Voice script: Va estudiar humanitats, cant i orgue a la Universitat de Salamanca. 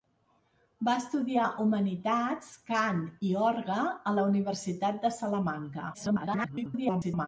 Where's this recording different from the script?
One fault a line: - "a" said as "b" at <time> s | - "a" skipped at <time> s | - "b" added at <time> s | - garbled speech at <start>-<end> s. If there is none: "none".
- garbled speech at 5.9-7.3 s